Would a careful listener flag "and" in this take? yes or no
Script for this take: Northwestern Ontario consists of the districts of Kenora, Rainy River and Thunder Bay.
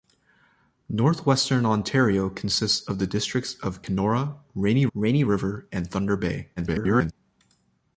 no